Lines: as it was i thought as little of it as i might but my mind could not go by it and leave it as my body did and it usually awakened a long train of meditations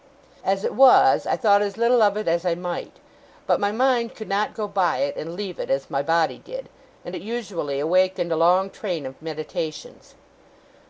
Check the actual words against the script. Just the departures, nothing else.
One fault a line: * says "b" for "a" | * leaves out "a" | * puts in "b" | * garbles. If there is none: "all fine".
all fine